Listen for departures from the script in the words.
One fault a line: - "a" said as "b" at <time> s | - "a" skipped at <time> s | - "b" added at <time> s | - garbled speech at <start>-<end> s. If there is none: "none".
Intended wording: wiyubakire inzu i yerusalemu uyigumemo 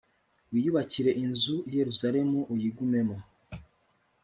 none